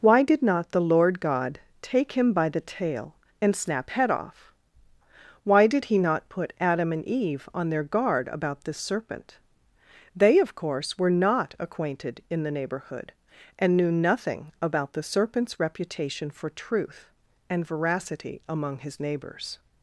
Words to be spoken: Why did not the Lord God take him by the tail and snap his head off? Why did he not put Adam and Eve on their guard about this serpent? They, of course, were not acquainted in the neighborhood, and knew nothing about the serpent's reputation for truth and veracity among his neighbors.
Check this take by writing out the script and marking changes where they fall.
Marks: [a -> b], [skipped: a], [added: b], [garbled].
Why did not the Lord God take him by the tail and snap [skipped: his] head off? Why did he not put Adam and Eve on their guard about this serpent? They, of course, were not acquainted in the neighborhood, and knew nothing about the serpent's reputation for truth and veracity among his neighbors.